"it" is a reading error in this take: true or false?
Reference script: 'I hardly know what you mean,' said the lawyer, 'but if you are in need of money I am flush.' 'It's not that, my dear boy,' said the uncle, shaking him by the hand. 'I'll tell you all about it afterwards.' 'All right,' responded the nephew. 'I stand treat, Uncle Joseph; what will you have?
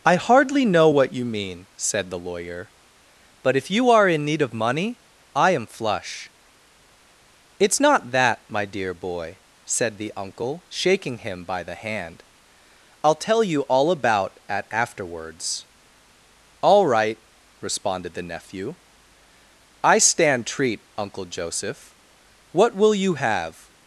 true